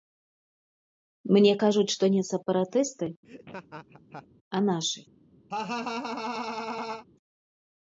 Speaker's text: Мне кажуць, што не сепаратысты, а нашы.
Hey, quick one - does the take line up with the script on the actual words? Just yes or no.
yes